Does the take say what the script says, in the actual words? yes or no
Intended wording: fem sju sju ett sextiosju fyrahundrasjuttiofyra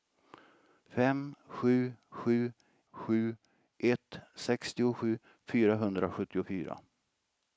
no